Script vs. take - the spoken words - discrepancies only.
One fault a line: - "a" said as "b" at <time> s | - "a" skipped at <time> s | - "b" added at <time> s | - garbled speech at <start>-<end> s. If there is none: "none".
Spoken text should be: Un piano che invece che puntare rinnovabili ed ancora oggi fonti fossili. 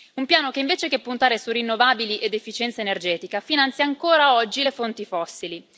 - "su" added at 1.4 s
- "efficienza energetica finanzia" added at 2.3 s
- "le" added at 4.6 s